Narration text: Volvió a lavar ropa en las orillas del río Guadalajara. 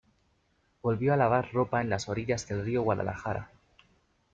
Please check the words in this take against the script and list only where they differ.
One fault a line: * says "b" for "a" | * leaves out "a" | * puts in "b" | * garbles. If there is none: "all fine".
all fine